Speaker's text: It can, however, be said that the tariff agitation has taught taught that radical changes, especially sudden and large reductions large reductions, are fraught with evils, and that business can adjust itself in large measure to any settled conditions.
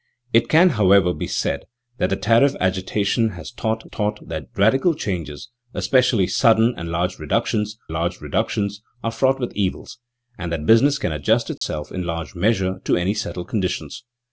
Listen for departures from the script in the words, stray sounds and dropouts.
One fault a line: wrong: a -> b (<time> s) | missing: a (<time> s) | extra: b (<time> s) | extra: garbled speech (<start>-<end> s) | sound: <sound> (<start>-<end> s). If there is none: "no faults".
sound: dropout (11.6-11.6 s)